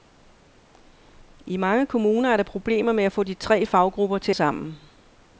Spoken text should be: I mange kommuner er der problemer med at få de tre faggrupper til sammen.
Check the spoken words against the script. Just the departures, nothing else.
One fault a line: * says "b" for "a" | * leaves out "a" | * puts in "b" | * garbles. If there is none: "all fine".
all fine